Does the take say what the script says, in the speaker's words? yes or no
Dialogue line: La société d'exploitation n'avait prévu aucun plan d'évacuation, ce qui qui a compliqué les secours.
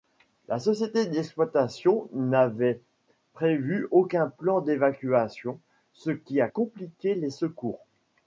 no